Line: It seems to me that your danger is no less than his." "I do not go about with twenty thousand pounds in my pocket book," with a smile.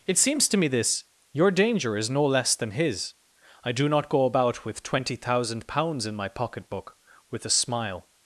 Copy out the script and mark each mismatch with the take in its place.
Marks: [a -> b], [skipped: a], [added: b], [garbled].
It seems to me [that -> this] your danger is no less than his." "I do not go about with twenty thousand pounds in my pocket book," with a smile.